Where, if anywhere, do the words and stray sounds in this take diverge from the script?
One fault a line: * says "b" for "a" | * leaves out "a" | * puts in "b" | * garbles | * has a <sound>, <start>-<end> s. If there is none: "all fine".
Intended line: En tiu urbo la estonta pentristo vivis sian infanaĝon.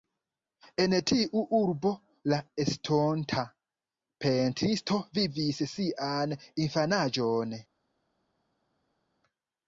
all fine